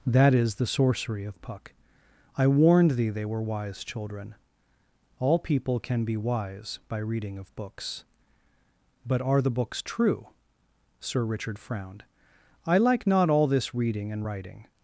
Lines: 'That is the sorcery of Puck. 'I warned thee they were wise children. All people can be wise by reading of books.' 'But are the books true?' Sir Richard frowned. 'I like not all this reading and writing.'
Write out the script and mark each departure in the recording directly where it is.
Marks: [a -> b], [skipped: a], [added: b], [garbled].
'That is the sorcery of Puck. 'I warned thee they were wise children. All people can be wise by reading of books.' 'But are the books true?' Sir Richard frowned. 'I like not all this reading and writing.'